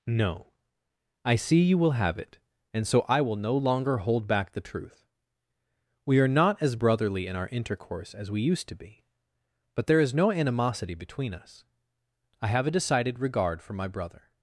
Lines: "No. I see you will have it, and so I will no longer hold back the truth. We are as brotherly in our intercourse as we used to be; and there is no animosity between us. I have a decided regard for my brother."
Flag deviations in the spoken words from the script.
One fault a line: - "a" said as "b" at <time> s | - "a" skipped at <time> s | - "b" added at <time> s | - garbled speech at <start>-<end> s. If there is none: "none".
- "not" added at 6.3 s
- "and" said as "but" at 9.7 s